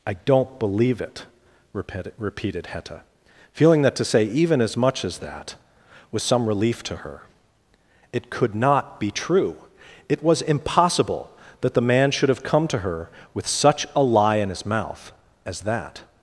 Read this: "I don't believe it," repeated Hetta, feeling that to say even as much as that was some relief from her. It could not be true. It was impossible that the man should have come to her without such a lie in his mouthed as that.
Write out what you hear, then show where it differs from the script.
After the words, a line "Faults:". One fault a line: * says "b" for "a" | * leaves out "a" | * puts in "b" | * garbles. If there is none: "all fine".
"I don't believe it," repeated Hetta, feeling that to say even as much as that was some relief to her. It could not be true. It was impossible that the man should have come to her with such a lie in his mouth as that.
Faults:
* says "to" for "from"
* says "with" for "without"
* says "mouth" for "mouthed"